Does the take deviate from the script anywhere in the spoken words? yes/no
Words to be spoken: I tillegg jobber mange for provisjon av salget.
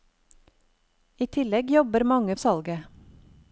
yes